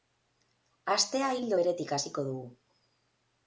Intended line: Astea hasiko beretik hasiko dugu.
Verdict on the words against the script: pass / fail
fail